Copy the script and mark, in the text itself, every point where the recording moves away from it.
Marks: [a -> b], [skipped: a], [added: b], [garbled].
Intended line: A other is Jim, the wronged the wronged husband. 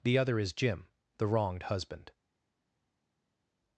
[A -> The] other is Jim, the wronged [skipped: the wronged] husband.